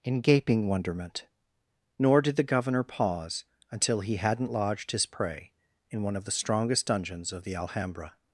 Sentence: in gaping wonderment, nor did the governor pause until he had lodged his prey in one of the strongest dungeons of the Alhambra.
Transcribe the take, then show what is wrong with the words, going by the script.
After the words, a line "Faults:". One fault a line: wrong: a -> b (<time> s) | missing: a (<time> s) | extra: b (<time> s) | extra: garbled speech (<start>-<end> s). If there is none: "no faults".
in gaping wonderment, nor did the governor pause until he hadn't lodged his prey in one of the strongest dungeons of the Alhambra.
Faults:
wrong: had -> hadn't (4.2 s)